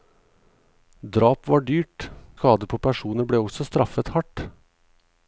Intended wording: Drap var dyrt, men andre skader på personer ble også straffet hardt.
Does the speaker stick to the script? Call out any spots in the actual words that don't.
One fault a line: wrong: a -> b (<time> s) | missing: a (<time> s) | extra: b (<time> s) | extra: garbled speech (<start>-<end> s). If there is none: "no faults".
missing: men andre (2.1 s)